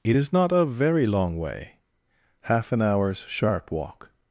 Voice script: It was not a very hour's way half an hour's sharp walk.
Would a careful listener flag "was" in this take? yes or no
yes